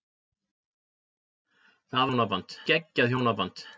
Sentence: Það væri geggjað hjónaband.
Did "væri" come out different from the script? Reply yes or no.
yes